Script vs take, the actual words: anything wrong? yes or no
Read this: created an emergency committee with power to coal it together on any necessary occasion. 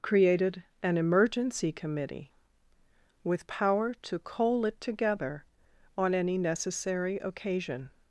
no